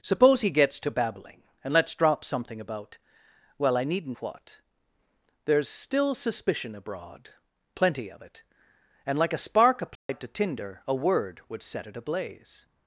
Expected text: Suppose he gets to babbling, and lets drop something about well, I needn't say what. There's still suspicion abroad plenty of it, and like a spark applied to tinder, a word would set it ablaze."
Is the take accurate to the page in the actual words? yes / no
no